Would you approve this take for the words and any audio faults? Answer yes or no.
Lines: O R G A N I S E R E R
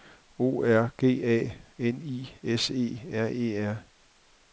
yes